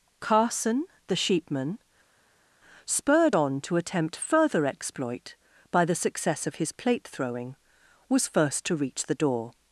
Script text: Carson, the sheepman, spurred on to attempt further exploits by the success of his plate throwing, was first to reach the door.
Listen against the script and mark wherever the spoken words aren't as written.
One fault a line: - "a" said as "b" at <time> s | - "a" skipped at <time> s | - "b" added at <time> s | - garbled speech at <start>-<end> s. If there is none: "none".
- "exploits" said as "exploit" at 4.7 s